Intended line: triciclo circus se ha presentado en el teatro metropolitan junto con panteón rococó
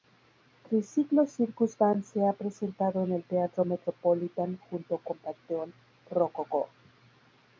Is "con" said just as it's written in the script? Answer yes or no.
yes